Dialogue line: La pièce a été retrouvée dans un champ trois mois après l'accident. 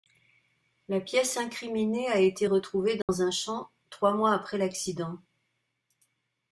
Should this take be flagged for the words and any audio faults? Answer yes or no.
yes